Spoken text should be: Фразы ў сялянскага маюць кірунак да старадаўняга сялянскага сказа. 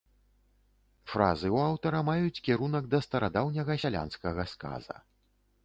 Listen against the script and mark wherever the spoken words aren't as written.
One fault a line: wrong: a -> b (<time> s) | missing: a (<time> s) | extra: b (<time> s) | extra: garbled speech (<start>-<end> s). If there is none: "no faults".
wrong: сялянскага -> аўтара (1.7 s)